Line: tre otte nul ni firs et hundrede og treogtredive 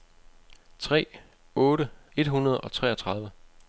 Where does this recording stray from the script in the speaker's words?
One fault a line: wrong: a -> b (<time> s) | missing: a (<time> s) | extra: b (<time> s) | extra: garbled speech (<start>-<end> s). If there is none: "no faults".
missing: nul ni firs (1.9 s)